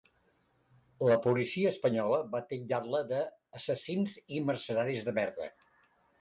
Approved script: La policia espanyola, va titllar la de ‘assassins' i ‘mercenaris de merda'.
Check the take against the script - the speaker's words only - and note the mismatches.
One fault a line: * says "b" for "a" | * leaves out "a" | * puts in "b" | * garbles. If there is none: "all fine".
all fine